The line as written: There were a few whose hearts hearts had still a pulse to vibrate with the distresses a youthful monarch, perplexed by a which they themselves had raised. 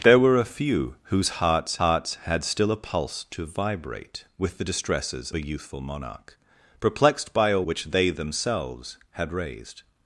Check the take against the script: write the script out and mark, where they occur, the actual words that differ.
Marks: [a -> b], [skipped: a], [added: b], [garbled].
There were a few whose hearts hearts had still a pulse to vibrate with the distresses a youthful monarch, perplexed by a which they themselves had raised.